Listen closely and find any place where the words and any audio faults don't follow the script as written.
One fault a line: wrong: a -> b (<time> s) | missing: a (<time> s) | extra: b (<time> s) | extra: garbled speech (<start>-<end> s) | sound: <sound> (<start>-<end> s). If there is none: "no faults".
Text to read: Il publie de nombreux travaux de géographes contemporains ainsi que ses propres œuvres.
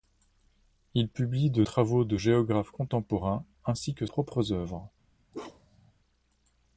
missing: nombreux (1.6 s)
missing: ses (4.1 s)
sound: bark (5.3-5.9 s)